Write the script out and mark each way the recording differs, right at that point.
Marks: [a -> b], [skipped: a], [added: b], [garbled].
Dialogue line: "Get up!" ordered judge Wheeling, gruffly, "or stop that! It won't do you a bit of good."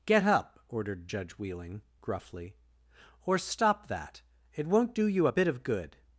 "Get up!" ordered judge Wheeling, gruffly, "or stop that! It won't do you a bit of good."